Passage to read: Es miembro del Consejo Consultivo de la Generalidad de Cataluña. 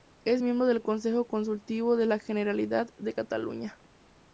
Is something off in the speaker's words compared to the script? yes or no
no